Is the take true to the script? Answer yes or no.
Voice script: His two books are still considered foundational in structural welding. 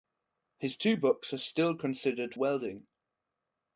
no